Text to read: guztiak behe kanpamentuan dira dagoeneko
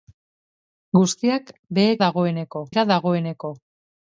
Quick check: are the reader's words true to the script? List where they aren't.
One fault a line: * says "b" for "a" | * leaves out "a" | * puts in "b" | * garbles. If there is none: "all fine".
* says "dagoeneko" for "kanpamentuan"